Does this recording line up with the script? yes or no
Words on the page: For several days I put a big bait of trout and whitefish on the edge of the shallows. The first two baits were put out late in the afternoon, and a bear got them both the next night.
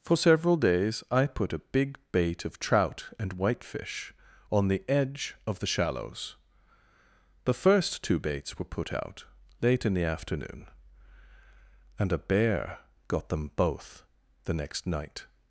yes